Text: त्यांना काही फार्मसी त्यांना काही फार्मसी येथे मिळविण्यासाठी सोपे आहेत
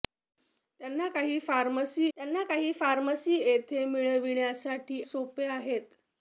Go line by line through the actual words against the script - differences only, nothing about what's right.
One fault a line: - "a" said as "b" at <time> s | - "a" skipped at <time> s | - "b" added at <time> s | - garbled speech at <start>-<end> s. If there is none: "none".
none